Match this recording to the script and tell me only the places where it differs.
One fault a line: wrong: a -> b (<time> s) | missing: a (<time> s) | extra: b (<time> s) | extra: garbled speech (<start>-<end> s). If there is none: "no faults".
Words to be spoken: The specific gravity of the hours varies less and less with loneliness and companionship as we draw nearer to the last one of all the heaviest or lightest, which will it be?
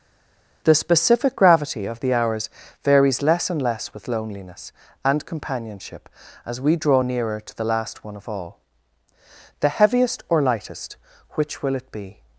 no faults